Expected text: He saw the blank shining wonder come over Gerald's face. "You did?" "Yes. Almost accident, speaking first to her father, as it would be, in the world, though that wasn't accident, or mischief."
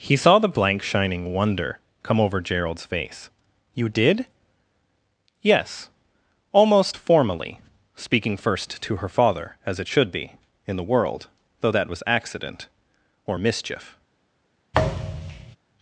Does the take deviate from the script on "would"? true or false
true